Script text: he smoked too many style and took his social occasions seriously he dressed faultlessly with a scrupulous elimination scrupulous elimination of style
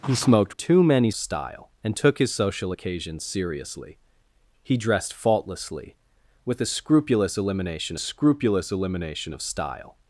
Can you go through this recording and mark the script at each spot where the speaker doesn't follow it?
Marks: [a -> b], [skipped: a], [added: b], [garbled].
he smoked too many style and took his social occasions seriously he dressed faultlessly with a scrupulous elimination scrupulous elimination of style